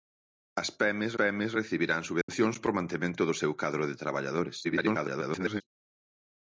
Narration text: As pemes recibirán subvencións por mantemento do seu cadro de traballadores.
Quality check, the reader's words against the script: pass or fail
fail